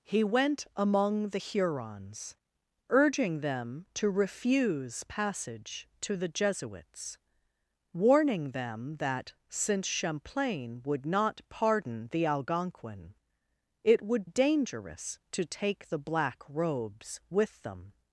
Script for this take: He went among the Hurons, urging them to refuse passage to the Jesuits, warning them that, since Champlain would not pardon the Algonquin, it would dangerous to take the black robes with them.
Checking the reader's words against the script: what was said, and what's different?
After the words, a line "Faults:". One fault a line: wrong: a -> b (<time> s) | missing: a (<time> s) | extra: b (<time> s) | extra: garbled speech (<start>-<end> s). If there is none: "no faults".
He went among the Hurons, urging them to refuse passage to the Jesuits, warning them that, since Champlain would not pardon the Algonquin, it would dangerous to take the black robes with them.
Faults:
no faults